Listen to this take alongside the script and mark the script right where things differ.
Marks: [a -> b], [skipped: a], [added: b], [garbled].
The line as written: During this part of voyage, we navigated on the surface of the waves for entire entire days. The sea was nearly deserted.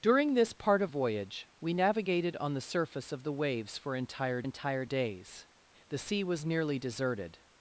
During this part of voyage, we navigated on the surface of the waves for entire entire days. The sea was nearly deserted.